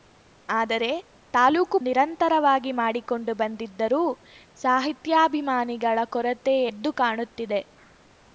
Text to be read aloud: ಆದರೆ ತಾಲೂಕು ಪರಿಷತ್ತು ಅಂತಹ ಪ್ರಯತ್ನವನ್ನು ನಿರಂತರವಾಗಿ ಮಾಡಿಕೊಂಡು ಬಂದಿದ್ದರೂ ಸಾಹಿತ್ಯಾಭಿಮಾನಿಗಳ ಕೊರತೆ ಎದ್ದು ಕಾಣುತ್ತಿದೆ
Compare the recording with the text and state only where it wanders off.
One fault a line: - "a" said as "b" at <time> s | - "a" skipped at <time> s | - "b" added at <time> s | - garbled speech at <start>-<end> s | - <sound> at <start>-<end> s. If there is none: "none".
- "ಪರಿಷತ್ತು ಅಂತಹ ಪ್ರಯತ್ನವನ್ನು" skipped at 1.8 s